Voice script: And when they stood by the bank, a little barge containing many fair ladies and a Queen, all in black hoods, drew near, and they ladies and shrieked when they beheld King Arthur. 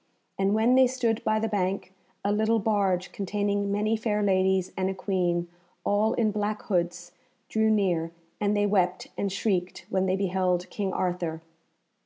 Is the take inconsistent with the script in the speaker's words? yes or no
yes